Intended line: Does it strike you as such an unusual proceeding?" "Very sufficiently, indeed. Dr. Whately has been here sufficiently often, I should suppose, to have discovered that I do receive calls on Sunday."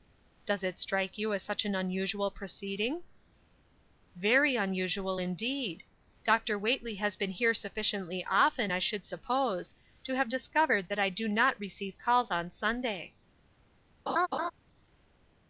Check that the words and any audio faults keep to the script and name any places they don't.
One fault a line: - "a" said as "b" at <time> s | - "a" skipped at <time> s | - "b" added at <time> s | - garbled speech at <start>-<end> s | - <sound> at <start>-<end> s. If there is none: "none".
- "sufficiently" said as "unusual" at 4.5 s
- "not" added at 11.3 s
- laugh at 14.1-14.5 s